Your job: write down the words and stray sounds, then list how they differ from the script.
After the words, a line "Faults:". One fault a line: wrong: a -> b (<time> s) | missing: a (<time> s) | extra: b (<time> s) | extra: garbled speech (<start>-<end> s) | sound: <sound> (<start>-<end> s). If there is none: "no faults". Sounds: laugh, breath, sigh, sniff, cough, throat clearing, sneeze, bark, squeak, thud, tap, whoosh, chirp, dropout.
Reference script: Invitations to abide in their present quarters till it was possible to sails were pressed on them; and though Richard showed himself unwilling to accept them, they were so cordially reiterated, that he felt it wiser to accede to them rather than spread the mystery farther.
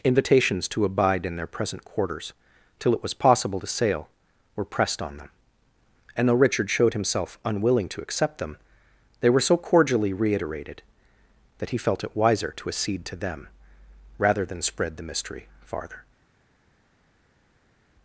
Invitations to abide in their present quarters till it was possible to sail were pressed on them; and though Richard showed himself unwilling to accept them, they were so cordially reiterated, that he felt it wiser to accede to them rather than spread the mystery farther.
Faults:
wrong: sails -> sail (3.7 s)